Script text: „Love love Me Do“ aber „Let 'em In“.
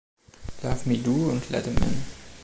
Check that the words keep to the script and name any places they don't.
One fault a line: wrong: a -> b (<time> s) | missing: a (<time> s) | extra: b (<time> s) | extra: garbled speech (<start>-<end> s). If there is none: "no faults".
missing: love (0.9 s)
wrong: aber -> und (1.3 s)